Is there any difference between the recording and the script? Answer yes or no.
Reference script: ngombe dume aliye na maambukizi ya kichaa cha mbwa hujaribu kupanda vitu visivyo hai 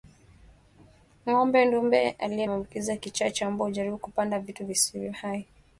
yes